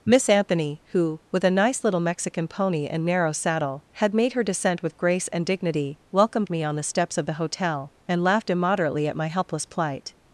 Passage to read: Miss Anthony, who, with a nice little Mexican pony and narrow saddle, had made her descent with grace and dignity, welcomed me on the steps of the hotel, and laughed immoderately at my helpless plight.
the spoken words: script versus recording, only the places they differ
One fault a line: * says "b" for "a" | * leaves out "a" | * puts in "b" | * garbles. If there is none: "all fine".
all fine